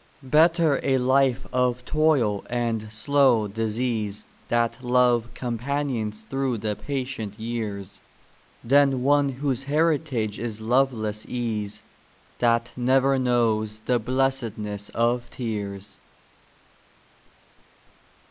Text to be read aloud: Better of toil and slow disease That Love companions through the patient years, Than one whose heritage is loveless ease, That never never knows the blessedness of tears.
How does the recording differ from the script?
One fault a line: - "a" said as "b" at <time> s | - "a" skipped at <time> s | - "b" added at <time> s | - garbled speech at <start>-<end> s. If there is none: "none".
- "a life" added at 0.8 s
- "never" skipped at 13.2 s